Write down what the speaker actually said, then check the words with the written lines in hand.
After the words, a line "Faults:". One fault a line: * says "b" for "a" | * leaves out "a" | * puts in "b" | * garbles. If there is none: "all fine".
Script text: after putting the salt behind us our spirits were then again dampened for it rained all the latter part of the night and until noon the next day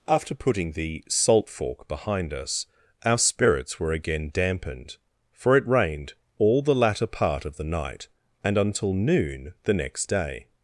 after putting the salt fork behind us our spirits were again dampened for it rained all the latter part of the night and until noon the next day
Faults:
* puts in "fork"
* leaves out "then"